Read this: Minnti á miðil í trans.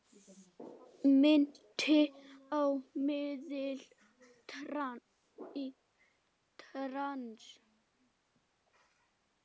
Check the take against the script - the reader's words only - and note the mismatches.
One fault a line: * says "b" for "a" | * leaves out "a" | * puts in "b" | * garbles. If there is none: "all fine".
all fine